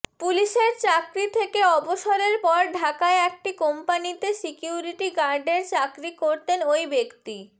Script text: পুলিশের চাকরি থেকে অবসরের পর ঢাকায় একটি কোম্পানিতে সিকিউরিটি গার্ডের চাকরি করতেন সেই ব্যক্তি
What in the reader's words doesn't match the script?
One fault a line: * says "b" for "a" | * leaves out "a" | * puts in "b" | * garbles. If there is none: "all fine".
* says "ওই" for "সেই"